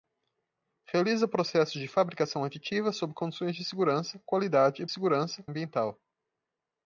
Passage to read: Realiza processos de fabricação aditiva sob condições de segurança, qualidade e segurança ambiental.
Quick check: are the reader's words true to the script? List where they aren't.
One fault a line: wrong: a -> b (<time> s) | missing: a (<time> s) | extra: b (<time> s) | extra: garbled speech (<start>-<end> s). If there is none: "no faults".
no faults